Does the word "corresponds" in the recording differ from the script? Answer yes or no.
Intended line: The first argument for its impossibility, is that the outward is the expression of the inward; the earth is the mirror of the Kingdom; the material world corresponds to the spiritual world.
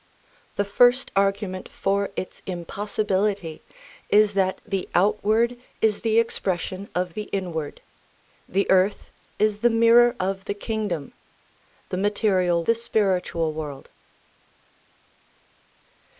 yes